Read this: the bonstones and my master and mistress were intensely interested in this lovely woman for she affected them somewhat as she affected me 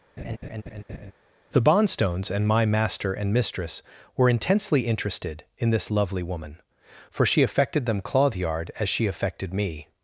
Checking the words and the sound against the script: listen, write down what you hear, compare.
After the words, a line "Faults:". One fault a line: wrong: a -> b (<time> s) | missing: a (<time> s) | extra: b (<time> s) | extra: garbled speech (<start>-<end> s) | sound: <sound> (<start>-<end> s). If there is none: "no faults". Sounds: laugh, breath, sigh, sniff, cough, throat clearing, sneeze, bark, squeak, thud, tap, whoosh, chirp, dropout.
the bonstones and my master and mistress were intensely interested in this lovely woman for she affected them clothyard as she affected me
Faults:
sound: laugh (0.2-1.1 s)
wrong: somewhat -> clothyard (8.0 s)